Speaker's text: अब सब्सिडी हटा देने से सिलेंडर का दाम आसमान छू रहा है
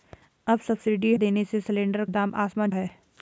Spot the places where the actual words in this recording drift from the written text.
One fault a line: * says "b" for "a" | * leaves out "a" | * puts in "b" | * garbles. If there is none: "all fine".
* leaves out "हटा"
* leaves out "का"
* leaves out "छू रहा"